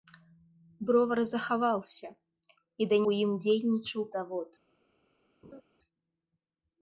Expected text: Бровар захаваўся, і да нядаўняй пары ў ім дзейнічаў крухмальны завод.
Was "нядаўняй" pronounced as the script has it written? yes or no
no